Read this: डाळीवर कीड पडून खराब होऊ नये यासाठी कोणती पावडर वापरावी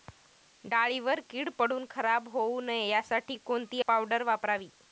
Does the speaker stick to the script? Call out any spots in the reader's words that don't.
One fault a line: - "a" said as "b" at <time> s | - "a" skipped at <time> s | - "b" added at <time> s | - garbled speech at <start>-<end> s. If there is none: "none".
none